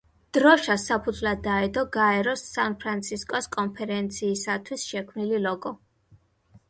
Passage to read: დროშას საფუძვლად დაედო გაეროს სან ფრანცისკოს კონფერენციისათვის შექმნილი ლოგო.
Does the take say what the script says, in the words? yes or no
yes